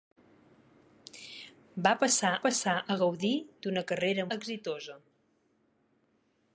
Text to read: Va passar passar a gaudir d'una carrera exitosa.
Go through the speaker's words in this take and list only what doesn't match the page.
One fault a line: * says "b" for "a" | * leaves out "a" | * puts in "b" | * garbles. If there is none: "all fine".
all fine